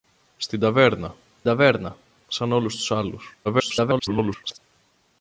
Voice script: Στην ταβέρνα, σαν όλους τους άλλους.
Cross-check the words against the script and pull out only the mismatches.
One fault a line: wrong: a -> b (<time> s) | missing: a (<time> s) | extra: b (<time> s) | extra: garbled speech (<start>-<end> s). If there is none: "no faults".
extra: ταβέρνα (1.4 s)
extra: garbled speech (3.4-4.6 s)